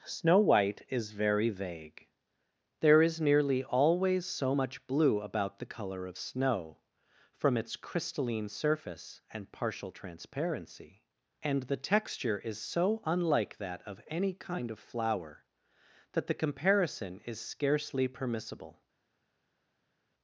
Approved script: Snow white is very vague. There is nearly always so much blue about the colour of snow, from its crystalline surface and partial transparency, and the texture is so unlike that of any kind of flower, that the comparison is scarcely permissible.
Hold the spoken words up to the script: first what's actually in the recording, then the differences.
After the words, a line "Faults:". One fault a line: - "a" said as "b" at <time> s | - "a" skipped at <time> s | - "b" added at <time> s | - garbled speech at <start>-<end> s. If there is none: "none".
Snow white is very vague. There is nearly always so much blue about the colour of snow, from its crystalline surface and partial transparency, and the texture is so unlike that of any kind of flower, that the comparison is scarcely permissible.
Faults:
none